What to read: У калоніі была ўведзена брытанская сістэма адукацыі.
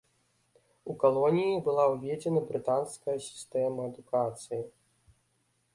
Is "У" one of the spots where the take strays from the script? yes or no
no